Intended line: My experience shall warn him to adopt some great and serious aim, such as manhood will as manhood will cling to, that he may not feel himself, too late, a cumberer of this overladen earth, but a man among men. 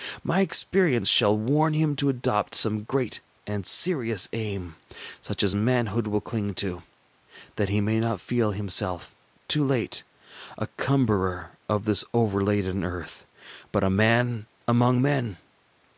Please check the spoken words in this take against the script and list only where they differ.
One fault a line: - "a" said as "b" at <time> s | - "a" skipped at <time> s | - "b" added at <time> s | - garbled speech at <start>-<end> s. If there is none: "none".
- "as manhood will" skipped at 6.2 s